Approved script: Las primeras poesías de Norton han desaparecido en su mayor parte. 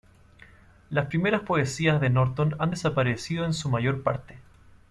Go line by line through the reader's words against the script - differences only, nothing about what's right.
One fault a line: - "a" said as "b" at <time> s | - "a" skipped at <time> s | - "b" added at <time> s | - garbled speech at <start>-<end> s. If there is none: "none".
none